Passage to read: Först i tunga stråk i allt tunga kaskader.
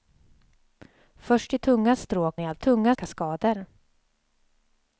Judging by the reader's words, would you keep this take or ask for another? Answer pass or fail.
pass